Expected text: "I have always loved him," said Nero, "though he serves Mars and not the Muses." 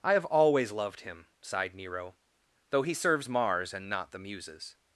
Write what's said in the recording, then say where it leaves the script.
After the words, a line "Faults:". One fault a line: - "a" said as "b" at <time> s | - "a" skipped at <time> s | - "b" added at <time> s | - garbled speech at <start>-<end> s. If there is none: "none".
"I have always loved him," sighed Nero, "though he serves Mars and not the Muses."
Faults:
- "said" said as "sighed" at 1.4 s